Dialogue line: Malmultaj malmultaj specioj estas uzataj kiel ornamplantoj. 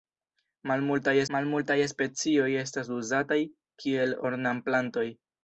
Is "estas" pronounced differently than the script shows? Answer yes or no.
no